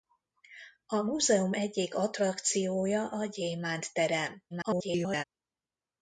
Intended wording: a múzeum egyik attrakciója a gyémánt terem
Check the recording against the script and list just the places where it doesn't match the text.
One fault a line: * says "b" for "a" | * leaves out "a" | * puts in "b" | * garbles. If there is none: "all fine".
* garbles